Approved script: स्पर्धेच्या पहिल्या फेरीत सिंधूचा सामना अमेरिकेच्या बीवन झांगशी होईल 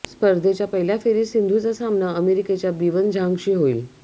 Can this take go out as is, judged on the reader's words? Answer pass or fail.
pass